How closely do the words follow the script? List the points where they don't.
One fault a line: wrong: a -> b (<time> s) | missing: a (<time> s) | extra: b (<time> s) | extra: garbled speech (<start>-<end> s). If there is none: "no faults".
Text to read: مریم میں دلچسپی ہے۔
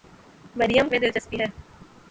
no faults